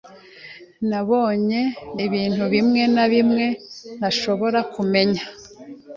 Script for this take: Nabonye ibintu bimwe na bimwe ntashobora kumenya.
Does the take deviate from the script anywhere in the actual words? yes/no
no